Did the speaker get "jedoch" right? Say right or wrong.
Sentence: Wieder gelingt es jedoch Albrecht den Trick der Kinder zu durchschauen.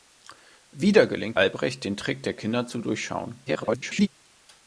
wrong